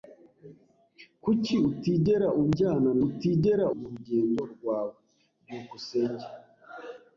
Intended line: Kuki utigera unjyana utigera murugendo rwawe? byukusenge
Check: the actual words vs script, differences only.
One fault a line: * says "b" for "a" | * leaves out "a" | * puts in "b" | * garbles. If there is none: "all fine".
all fine